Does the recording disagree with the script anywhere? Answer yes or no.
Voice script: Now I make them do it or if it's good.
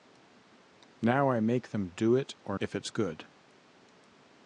no